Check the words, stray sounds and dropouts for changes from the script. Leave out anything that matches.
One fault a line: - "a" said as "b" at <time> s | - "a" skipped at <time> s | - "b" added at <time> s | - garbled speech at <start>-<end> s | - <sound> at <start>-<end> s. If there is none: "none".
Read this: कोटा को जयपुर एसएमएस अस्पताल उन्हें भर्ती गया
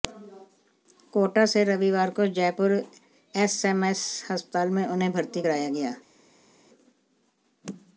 - "से रविवार" added at 1.4 s
- "में" added at 4.7 s
- "कराया" added at 5.4 s